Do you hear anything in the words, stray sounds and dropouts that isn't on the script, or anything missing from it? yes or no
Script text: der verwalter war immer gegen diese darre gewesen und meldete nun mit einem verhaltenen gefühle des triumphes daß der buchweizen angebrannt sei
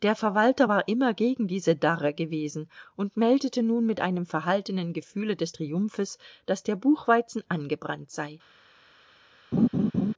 yes